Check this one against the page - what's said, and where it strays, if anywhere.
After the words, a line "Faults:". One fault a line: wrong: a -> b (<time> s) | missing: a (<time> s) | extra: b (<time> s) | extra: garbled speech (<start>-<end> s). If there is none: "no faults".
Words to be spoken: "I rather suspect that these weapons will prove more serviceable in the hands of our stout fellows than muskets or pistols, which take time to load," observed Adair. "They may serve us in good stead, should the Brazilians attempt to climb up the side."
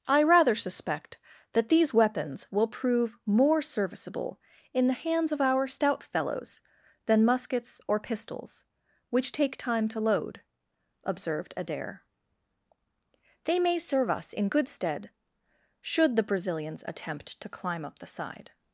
"I rather suspect that these weapons will prove more serviceable in the hands of our stout fellows than muskets or pistols, which take time to load," observed Adair. "They may serve us in good stead, should the Brazilians attempt to climb up the side."
Faults:
no faults